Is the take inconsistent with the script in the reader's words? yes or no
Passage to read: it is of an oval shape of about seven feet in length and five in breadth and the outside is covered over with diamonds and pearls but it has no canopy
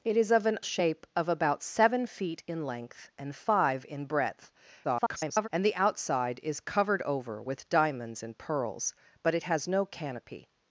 yes